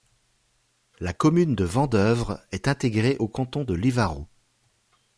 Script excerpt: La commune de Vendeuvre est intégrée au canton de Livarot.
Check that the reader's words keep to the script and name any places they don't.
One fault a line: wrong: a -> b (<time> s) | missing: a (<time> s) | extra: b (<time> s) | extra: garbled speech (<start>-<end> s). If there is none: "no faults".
no faults